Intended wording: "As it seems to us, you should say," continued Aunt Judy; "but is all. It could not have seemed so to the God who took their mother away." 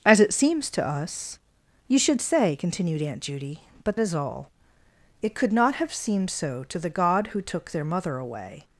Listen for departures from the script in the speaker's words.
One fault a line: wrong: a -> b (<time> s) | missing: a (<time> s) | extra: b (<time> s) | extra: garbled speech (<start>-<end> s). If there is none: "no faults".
no faults